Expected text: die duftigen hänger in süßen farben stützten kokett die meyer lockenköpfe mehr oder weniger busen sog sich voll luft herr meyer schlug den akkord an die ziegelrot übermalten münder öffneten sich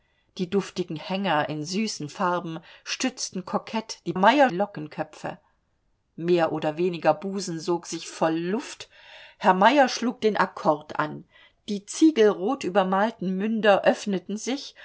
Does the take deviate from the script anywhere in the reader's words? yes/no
no